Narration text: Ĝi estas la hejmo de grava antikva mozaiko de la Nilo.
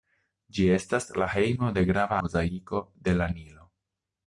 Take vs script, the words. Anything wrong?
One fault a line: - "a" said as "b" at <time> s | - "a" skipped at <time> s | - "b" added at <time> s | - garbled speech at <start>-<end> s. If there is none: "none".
- "antikva" skipped at 2.2 s